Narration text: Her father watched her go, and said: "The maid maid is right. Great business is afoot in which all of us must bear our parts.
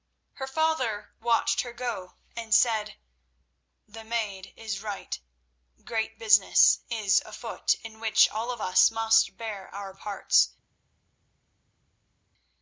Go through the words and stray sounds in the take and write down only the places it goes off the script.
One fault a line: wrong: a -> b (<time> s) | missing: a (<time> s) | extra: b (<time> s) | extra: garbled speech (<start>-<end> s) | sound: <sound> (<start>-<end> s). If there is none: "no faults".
missing: maid (4.5 s)